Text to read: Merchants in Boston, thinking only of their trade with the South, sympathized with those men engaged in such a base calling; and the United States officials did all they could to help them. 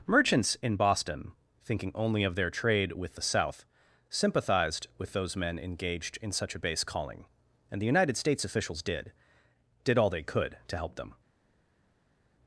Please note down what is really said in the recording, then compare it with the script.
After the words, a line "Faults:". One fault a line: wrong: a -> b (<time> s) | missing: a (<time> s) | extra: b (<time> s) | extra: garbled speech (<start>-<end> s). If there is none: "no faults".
Merchants in Boston, thinking only of their trade with the South, sympathized with those men engaged in such a base calling; and the United States officials did did all they could to help them.
Faults:
extra: did (9.8 s)